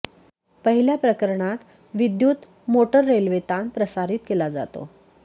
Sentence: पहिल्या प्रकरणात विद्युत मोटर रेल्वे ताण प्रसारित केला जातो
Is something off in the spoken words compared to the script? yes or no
no